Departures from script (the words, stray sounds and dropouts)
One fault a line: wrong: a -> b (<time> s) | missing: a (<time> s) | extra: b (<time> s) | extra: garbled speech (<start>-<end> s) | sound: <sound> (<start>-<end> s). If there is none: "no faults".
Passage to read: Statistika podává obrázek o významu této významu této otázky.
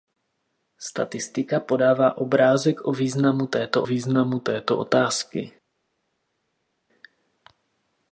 no faults